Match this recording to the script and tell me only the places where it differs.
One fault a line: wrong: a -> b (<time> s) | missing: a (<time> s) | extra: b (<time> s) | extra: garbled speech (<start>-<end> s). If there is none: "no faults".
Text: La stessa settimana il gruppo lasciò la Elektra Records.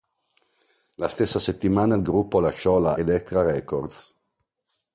no faults